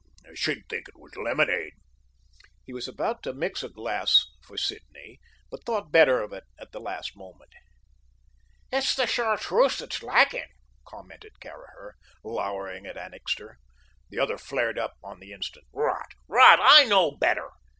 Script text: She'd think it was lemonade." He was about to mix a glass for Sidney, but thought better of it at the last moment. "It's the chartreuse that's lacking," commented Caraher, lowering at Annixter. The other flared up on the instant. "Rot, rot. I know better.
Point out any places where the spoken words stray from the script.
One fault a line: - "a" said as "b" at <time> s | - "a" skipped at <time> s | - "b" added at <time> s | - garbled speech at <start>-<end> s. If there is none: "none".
none